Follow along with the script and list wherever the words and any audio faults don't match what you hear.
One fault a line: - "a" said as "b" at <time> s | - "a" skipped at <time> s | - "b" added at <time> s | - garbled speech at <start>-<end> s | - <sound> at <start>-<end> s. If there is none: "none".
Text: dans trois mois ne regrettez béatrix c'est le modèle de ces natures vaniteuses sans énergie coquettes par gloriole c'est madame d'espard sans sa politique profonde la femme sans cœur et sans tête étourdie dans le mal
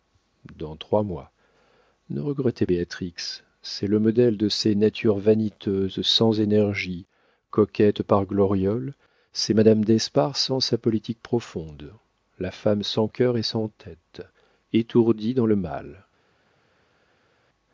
none